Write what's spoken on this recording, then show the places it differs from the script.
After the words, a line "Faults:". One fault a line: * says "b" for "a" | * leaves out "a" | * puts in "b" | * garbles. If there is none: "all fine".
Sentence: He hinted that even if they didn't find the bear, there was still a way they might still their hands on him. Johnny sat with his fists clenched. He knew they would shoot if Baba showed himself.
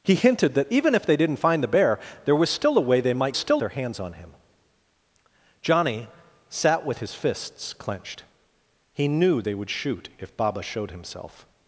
He hinted that even if they didn't find the bear, there was still a way they might still their hands on him. Johnny sat with his fists clenched. He knew they would shoot if Baba showed himself.
Faults:
all fine